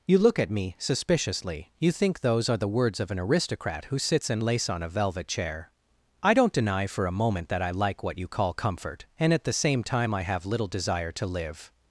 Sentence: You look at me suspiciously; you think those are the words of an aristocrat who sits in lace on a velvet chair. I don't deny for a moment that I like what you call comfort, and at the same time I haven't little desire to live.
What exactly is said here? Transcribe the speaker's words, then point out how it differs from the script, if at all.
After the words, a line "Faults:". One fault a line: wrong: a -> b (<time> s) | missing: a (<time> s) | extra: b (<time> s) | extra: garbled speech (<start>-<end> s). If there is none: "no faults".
You look at me suspiciously; you think those are the words of an aristocrat who sits in lace on a velvet chair. I don't deny for a moment that I like what you call comfort, and at the same time I have little desire to live.
Faults:
wrong: haven't -> have (10.2 s)